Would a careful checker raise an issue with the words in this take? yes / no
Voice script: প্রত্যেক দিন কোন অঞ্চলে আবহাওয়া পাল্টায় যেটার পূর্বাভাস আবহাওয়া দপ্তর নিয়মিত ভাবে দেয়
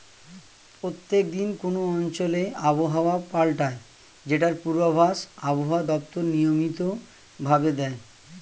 no